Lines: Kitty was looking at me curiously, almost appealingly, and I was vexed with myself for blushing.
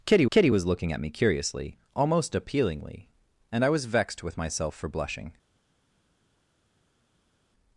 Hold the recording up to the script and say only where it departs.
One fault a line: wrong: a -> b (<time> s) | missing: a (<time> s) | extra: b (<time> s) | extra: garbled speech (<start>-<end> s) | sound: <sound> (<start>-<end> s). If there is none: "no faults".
extra: kitty (0.3 s)